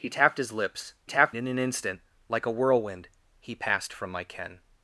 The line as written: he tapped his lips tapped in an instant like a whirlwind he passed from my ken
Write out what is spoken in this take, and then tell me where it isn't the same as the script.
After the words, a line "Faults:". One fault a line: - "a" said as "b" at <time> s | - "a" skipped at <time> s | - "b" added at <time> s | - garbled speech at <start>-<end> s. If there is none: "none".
he tapped his lips tapped in an instant like a whirlwind he passed from my ken
Faults:
none